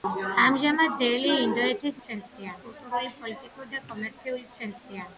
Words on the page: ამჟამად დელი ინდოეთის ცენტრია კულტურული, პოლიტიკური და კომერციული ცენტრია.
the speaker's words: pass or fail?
pass